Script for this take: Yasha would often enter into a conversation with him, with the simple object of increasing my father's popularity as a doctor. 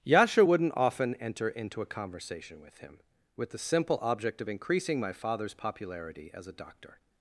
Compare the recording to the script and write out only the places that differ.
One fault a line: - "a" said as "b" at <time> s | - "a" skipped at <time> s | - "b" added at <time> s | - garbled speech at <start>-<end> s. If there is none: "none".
- "would" said as "wouldn't" at 0.4 s